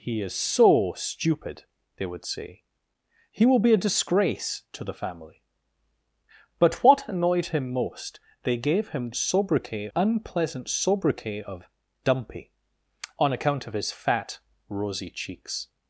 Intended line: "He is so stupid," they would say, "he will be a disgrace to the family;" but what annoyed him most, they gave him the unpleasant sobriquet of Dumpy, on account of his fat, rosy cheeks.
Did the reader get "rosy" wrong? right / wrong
right